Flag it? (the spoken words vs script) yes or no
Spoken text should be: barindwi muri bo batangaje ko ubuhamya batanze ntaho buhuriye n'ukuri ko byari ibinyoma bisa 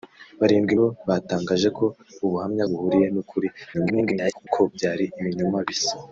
yes